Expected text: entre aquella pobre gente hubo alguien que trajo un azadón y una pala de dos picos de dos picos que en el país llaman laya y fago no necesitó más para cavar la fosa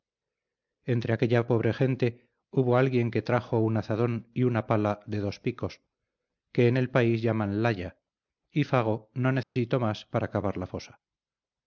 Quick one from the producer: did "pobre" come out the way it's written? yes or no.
yes